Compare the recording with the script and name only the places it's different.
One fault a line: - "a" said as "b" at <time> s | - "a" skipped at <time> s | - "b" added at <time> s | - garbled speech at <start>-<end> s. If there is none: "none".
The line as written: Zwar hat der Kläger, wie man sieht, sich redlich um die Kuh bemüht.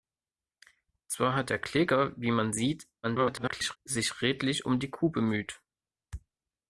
- garbled speech at 3.0-3.8 s